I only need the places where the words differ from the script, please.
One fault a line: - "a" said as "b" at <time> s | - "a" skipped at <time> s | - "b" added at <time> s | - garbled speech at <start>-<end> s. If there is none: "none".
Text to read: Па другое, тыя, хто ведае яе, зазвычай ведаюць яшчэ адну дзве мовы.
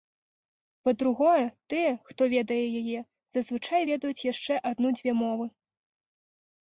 none